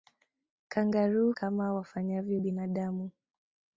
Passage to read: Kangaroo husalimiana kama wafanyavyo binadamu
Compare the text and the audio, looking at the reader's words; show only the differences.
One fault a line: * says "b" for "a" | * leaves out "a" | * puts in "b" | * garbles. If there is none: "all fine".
* leaves out "husalimiana"